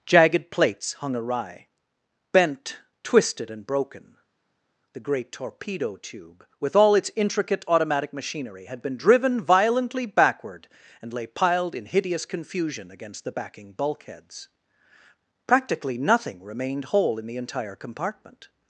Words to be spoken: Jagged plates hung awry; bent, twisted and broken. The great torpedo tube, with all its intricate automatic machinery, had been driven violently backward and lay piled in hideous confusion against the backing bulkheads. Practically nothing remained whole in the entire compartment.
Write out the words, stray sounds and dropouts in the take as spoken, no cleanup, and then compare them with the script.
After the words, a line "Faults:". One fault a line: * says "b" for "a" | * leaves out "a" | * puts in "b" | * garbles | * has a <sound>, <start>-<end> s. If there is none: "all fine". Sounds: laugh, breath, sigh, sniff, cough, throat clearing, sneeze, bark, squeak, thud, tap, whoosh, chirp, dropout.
Jagged plates hung awry; bent, twisted and broken. The great torpedo tube, with all its intricate automatic machinery, had been driven violently backward and lay piled in hideous confusion against the backing bulkheads. Practically nothing remained whole in the entire compartment.
Faults:
all fine